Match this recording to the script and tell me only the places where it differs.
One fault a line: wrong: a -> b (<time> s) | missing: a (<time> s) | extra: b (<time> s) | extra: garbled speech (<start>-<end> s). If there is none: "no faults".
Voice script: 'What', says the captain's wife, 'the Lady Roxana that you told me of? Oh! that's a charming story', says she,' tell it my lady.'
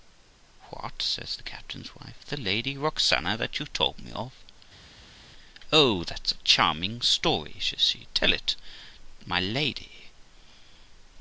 no faults